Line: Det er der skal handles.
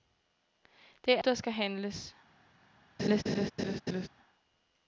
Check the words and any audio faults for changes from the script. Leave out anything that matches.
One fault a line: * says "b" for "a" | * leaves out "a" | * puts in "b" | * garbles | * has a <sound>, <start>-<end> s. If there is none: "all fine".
* has a laugh, 3.0-4.1 s